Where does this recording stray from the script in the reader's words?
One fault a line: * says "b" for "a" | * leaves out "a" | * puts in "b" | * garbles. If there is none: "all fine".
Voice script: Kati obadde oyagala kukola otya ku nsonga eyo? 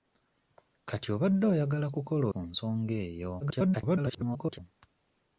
* leaves out "otya"
* garbles